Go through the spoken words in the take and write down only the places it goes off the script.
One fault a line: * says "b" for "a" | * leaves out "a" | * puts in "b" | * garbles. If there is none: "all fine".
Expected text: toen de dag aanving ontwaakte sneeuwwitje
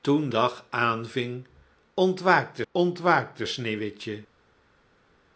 * leaves out "de"
* puts in "ontwaakte"